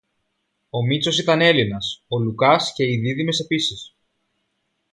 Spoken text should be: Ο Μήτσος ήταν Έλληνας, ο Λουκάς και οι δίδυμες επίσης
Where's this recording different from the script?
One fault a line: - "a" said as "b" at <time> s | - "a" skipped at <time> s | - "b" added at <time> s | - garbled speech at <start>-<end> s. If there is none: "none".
none